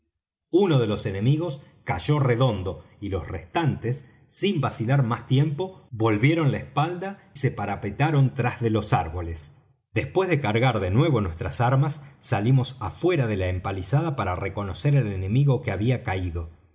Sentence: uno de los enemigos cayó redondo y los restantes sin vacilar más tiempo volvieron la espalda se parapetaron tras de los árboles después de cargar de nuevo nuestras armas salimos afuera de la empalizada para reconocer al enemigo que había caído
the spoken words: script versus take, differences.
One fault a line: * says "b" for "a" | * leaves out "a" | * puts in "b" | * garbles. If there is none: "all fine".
all fine